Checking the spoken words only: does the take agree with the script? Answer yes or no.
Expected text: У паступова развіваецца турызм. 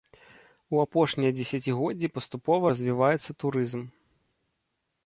no